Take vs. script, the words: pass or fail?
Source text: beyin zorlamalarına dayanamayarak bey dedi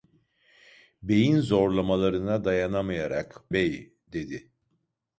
pass